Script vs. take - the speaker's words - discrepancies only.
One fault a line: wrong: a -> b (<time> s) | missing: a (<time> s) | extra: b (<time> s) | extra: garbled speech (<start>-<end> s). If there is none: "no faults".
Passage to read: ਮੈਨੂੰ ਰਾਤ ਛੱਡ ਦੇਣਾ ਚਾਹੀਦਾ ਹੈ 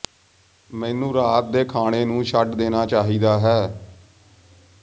extra: ਦੇ ਖਾਣੇ ਨੂੰ (1.5 s)